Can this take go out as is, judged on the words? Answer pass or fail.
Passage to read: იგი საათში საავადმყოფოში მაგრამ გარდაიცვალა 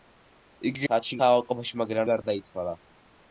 pass